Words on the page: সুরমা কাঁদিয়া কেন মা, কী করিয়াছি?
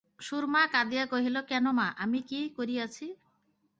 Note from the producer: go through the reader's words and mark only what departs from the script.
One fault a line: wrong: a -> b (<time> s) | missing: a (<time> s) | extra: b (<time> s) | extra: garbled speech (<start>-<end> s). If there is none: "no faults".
extra: কহিল (1.1 s)
extra: আমি (2.0 s)